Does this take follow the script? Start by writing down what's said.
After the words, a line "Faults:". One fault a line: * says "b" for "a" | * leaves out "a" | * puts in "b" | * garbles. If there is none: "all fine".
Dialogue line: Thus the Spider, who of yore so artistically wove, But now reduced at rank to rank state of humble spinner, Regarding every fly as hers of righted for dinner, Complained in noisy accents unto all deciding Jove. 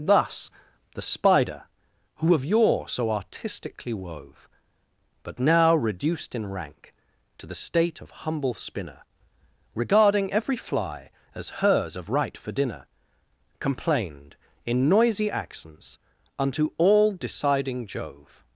Thus the Spider, who of yore so artistically wove, But now reduced in rank to the state of humble spinner, Regarding every fly as hers of right for dinner, Complained in noisy accents unto all deciding Jove.
Faults:
* says "in" for "at"
* says "the" for "rank"
* says "right" for "righted"